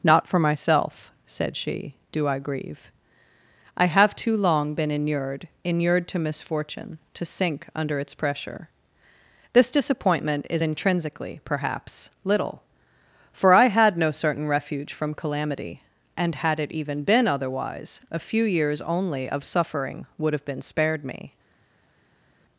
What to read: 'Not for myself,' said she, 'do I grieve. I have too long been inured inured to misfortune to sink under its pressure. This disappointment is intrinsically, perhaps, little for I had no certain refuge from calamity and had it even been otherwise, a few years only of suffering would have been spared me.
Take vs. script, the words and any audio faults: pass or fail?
pass